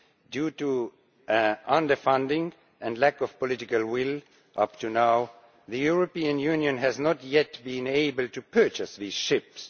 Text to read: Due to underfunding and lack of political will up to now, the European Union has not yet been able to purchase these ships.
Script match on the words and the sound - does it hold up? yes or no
yes